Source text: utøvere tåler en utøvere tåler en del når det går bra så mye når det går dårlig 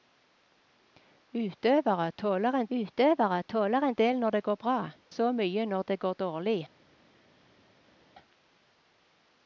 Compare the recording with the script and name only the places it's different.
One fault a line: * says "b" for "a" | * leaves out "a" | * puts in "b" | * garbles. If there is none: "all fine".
all fine